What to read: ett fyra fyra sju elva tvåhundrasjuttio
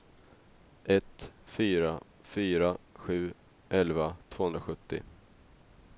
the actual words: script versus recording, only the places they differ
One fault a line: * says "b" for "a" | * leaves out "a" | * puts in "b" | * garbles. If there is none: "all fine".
all fine